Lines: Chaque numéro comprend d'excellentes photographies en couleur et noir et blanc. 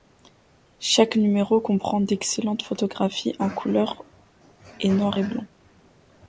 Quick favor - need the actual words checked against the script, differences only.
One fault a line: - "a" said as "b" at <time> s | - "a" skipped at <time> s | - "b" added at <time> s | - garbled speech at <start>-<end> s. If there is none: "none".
none